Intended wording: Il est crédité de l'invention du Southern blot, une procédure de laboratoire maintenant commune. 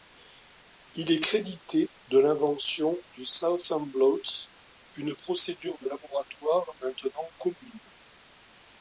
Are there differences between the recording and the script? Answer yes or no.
no